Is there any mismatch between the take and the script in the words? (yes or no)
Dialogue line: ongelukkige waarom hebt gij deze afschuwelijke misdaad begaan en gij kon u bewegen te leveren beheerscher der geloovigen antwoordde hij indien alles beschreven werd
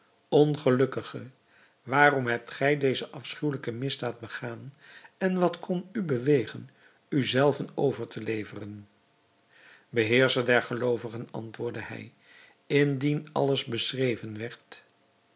yes